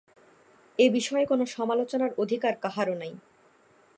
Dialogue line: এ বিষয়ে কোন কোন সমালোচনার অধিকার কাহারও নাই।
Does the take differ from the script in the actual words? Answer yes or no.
yes